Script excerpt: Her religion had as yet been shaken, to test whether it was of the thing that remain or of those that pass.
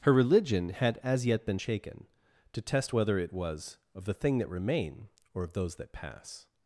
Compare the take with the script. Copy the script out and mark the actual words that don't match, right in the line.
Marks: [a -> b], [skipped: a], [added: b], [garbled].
Her religion had as yet been shaken, to test whether it was of the thing that remain or of those that pass.